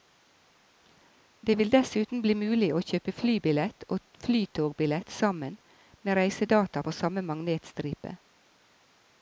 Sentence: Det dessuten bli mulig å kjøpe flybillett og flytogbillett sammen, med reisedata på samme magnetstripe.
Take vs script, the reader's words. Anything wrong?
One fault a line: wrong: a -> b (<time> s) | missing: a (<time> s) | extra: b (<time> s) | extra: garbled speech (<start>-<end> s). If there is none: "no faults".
extra: vil (1.6 s)